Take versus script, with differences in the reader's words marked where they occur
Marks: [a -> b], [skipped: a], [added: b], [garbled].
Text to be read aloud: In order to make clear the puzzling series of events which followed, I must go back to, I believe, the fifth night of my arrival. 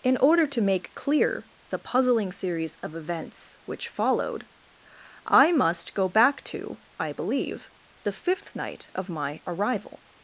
In order to make clear the puzzling series of events which followed, I must go back to, I believe, the fifth night of my arrival.